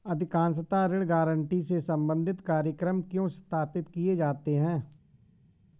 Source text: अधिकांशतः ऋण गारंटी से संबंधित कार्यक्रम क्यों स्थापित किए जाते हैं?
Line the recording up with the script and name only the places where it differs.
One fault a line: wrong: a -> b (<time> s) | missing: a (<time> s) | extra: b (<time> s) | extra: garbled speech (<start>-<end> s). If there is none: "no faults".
no faults